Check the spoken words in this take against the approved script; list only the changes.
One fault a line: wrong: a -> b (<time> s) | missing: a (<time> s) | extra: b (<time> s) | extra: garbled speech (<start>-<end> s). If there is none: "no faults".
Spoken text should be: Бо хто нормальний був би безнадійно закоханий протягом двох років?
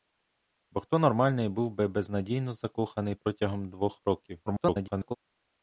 extra: garbled speech (4.5-5.2 s)